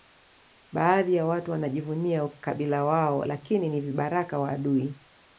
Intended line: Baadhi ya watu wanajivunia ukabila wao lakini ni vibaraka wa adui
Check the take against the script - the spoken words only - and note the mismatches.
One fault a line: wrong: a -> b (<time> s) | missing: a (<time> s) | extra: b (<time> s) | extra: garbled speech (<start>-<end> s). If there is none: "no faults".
no faults